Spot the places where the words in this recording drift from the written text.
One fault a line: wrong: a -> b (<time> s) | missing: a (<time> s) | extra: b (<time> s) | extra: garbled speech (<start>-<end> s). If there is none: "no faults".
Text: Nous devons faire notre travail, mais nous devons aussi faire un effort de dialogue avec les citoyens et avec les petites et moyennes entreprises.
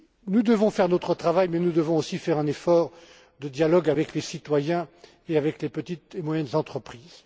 no faults